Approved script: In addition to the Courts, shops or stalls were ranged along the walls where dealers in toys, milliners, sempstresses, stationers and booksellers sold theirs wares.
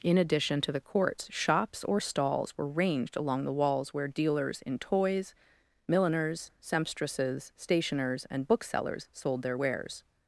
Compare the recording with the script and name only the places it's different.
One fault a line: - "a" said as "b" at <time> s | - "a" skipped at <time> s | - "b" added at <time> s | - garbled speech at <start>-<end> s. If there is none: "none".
- "theirs" said as "their" at 9.4 s